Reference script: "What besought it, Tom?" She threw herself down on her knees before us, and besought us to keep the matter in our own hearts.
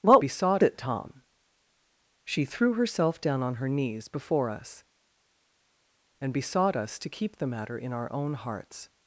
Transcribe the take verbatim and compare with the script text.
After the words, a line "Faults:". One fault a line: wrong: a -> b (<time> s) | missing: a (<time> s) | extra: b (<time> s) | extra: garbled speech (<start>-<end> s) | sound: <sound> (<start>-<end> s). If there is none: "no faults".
"What besought it, Tom?" She threw herself down on her knees before us, and besought us to keep the matter in our own hearts.
Faults:
no faults